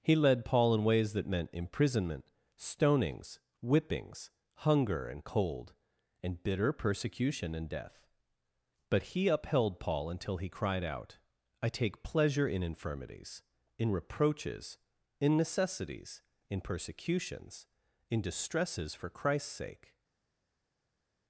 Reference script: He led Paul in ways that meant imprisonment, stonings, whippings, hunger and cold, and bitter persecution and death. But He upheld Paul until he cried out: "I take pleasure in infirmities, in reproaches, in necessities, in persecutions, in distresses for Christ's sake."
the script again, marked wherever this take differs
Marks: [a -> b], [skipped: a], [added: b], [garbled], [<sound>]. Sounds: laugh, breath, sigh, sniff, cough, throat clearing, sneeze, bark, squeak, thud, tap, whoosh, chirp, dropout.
He led Paul in ways that meant imprisonment, stonings, whippings, hunger and cold, and bitter persecution and death. But He upheld Paul until he cried out: "I take pleasure in infirmities, in reproaches, in necessities, in persecutions, in distresses for Christ's sake."